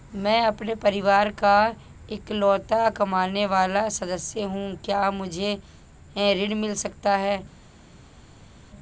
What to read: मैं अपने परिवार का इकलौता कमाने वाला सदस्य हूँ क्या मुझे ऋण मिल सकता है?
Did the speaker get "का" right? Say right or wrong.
right